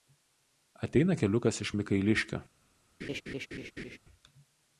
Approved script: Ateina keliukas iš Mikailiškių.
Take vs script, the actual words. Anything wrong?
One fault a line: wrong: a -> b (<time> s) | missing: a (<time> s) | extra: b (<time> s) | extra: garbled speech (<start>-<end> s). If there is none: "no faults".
no faults